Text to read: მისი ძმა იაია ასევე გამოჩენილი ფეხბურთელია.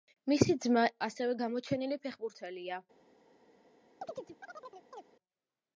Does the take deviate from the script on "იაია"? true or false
true